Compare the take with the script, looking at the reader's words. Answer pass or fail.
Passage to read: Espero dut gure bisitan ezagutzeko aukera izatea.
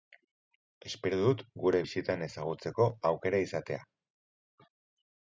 pass